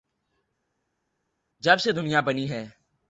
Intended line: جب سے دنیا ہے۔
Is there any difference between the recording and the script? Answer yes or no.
yes